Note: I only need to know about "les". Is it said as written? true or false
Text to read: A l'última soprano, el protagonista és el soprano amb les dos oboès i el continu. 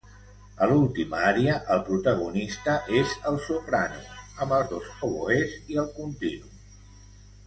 false